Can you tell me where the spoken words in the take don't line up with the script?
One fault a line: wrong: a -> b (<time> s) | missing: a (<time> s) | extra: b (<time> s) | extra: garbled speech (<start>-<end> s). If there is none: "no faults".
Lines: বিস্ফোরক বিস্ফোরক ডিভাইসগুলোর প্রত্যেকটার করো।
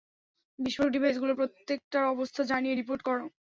missing: বিস্ফোরক (0.9 s)
extra: অবস্থা জানিয়ে রিপোর্ট (2.1 s)